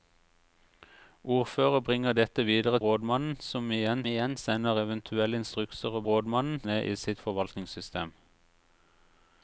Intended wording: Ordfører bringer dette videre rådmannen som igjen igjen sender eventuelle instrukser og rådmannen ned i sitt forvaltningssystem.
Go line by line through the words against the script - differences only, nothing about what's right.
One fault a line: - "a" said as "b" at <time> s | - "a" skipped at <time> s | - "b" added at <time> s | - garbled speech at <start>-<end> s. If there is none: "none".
none